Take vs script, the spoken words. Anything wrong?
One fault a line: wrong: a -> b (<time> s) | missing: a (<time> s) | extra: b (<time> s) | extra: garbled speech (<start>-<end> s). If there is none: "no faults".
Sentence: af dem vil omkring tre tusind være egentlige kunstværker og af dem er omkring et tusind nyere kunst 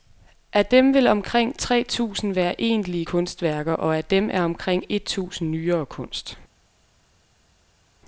no faults